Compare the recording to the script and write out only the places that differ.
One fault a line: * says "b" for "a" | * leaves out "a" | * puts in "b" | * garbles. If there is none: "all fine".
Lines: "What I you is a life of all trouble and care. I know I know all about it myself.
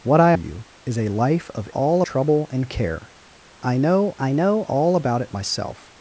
all fine